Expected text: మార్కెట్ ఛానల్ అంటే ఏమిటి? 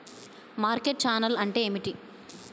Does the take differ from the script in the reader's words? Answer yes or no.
no